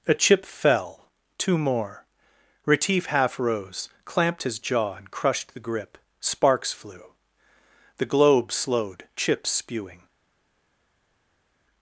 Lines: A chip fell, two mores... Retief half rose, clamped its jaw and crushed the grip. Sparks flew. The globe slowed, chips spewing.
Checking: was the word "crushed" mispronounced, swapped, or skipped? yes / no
no